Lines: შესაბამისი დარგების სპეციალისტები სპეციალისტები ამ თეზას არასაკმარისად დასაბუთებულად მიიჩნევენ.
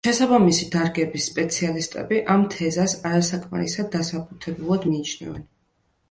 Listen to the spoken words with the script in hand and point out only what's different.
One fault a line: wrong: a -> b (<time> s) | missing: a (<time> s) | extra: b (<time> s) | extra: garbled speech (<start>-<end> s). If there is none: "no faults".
missing: სპეციალისტები (2.2 s)